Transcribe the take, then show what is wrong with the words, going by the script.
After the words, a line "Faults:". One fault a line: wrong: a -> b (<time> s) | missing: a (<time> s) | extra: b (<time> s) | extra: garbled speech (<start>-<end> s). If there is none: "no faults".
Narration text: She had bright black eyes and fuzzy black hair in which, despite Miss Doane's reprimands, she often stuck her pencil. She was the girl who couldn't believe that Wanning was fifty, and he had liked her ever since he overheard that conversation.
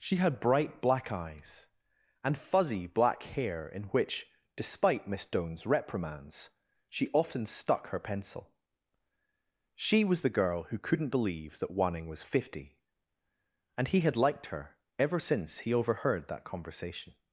She had bright black eyes and fuzzy black hair in which, despite Miss Doane's reprimands, she often stuck her pencil. She was the girl who couldn't believe that Wanning was fifty, and he had liked her ever since he overheard that conversation.
Faults:
no faults